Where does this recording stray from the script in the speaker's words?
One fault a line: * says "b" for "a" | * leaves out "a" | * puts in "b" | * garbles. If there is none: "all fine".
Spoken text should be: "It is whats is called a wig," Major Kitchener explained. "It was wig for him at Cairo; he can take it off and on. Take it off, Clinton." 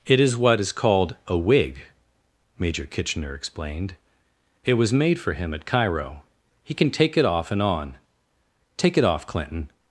* says "what" for "whats"
* says "made" for "wig"